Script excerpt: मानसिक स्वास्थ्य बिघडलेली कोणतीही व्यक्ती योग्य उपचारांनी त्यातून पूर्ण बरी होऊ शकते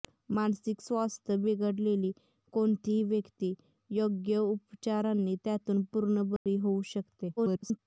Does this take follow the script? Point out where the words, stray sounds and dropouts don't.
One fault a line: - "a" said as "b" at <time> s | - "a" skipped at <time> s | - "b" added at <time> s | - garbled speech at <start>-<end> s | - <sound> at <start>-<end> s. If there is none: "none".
- dropout at 6.4-6.5 s
- garbled speech at 7.4-7.8 s